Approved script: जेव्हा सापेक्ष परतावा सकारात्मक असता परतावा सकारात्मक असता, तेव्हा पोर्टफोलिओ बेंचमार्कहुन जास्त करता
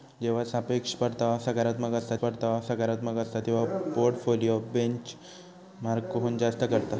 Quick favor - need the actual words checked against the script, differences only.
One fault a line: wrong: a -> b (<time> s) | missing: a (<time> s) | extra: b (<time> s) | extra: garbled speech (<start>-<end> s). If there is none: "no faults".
no faults